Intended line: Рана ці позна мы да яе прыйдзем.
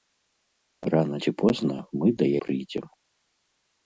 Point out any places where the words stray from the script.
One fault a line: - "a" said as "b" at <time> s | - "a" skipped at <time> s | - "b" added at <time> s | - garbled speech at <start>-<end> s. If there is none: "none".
- "яе" skipped at 2.3 s